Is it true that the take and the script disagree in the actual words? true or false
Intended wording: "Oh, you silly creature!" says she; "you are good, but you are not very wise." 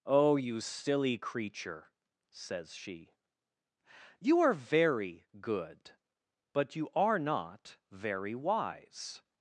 true